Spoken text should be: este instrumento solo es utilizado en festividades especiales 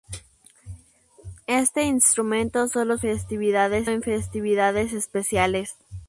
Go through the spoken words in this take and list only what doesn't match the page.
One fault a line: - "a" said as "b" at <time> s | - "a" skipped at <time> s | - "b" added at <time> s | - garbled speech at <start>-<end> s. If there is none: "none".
- "utilizado" said as "festividades" at 3.0 s